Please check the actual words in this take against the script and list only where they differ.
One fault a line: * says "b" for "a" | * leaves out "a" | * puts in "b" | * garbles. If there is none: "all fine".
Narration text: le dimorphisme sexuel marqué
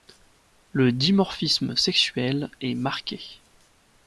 * puts in "est"